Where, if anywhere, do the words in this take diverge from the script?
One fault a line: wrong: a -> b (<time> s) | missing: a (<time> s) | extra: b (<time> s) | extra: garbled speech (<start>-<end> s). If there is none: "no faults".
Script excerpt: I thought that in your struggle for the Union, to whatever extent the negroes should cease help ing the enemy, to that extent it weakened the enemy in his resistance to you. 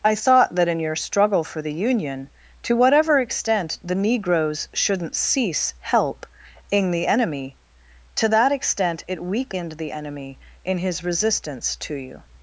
wrong: should -> shouldn't (4.7 s)